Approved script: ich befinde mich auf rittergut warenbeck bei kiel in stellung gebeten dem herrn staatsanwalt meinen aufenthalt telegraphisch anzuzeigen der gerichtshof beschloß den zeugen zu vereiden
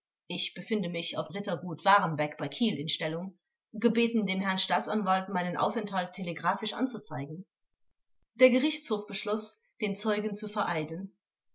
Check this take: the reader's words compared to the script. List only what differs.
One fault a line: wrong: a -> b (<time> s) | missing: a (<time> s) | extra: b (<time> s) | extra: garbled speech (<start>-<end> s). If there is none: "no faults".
no faults